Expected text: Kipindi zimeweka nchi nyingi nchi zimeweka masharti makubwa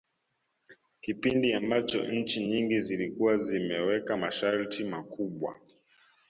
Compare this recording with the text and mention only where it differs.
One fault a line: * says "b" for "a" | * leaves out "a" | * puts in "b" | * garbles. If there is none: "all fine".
* says "ambacho" for "zimeweka"
* says "zilikuwa" for "nchi"